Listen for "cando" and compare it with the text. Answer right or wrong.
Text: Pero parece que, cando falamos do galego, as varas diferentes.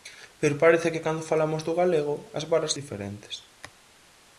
right